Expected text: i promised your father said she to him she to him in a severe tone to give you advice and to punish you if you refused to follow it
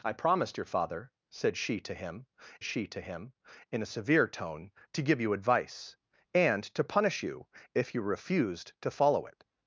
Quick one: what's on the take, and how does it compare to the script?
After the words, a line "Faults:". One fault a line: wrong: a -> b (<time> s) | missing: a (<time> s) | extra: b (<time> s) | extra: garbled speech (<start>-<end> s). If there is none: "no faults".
i promised your father said she to him she to him in a severe tone to give you advice and to punish you if you refused to follow it
Faults:
no faults